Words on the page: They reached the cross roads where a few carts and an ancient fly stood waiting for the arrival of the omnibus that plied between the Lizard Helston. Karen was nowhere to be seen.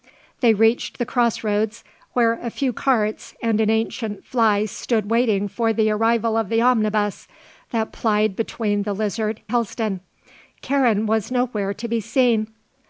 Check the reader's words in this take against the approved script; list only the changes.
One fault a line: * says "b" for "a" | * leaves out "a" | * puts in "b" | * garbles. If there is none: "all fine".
all fine